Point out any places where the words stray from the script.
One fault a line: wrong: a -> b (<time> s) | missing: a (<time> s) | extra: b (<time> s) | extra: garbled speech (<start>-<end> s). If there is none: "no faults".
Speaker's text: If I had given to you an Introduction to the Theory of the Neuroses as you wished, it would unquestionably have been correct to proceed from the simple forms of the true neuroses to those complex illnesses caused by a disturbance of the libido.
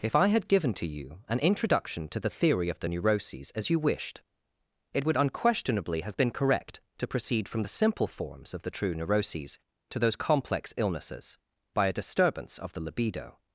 missing: caused (11.4 s)